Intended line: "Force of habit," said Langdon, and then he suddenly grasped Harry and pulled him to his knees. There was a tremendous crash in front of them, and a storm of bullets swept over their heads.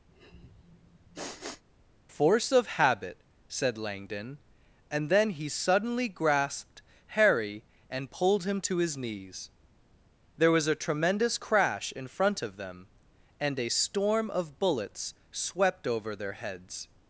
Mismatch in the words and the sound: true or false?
true